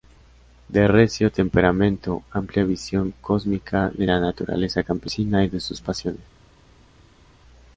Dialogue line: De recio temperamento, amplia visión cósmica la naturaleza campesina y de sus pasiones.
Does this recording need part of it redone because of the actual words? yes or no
yes